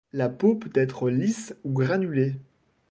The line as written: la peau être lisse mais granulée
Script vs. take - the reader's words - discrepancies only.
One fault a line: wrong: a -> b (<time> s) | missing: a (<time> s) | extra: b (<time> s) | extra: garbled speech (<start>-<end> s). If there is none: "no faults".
extra: peut (0.6 s)
wrong: mais -> ou (1.6 s)